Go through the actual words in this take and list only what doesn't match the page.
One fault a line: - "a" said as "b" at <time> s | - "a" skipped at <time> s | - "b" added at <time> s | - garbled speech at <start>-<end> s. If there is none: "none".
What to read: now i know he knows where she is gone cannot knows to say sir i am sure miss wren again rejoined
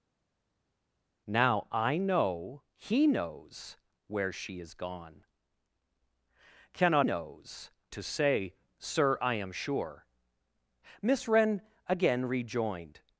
none